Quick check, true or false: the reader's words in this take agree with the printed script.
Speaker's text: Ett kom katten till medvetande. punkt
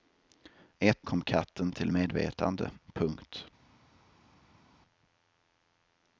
true